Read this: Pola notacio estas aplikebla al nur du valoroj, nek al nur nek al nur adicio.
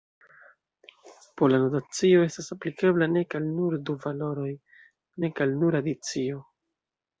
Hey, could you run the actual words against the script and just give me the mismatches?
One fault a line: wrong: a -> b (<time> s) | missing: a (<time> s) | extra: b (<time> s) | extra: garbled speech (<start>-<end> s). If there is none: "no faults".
extra: nek (3.1 s)
missing: nek al nur (5.8 s)